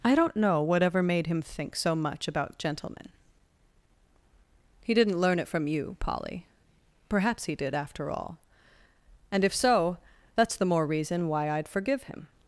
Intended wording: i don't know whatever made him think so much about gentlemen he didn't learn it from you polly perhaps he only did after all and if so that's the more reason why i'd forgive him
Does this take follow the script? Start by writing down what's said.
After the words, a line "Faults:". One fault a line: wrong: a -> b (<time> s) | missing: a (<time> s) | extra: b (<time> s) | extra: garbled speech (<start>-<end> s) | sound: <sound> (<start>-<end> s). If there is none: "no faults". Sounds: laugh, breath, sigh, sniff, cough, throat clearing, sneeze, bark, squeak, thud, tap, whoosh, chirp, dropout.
i don't know whatever made him think so much about gentlemen he didn't learn it from you polly perhaps he did after all and if so that's the more reason why i'd forgive him
Faults:
missing: only (7.5 s)